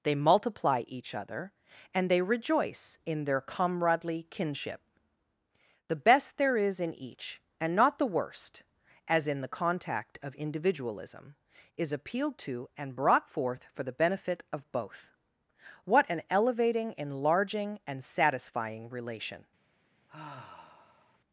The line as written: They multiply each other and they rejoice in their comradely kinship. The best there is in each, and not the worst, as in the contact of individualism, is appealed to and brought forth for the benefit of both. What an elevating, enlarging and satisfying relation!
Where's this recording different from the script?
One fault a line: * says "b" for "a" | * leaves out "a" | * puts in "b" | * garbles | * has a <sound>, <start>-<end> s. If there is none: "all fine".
* has a sigh, 20.1-21.2 s